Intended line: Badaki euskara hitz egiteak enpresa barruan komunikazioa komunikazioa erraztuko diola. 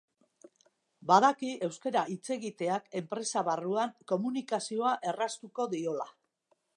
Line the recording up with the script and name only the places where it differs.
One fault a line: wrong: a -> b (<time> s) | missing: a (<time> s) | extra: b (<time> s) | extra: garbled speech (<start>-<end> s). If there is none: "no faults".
missing: komunikazioa (4.9 s)